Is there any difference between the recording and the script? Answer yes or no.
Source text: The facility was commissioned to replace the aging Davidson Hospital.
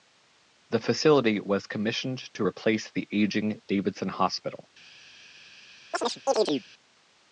no